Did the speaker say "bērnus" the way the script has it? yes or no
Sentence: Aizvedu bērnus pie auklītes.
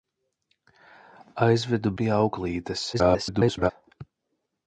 no